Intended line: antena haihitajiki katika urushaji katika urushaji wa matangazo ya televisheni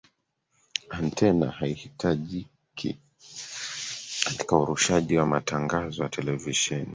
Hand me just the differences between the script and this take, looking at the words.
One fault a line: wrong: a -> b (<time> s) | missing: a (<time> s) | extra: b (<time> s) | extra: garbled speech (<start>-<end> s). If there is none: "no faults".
missing: katika urushaji (5.2 s)